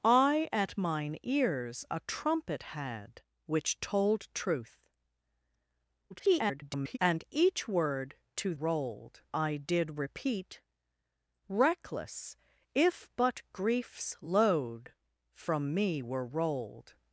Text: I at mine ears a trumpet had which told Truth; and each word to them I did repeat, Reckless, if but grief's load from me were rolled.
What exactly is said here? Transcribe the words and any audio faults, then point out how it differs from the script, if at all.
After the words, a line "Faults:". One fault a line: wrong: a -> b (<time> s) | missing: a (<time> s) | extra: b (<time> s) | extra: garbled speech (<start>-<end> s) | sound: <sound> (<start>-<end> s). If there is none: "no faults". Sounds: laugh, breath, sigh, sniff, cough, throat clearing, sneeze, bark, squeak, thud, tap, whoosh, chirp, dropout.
I at mine ears a trumpet had which told Truth; [garbled] and each word to rolled I did repeat, Reckless, if but grief's load from me were rolled.
Faults:
extra: garbled speech (6.1-7.0 s)
wrong: them -> rolled (8.5 s)